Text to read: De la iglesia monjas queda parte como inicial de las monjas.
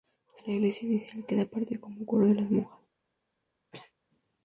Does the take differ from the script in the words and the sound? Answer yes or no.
yes